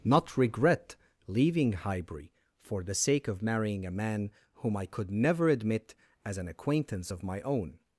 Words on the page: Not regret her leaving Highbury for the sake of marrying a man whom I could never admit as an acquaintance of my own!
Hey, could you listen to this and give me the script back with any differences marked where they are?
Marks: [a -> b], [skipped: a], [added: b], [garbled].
Not regret [skipped: her] leaving Highbury for the sake of marrying a man whom I could never admit as an acquaintance of my own!